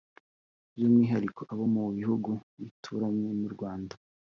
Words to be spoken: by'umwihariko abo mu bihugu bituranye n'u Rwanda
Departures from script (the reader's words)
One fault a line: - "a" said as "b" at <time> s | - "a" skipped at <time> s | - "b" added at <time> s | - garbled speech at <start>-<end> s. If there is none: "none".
none